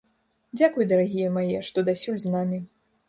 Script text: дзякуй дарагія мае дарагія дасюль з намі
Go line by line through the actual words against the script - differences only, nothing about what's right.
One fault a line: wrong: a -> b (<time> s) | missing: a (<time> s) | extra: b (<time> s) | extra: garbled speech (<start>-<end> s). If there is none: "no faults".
wrong: дарагія -> што (1.7 s)